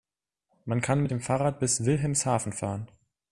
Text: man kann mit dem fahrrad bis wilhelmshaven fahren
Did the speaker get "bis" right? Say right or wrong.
right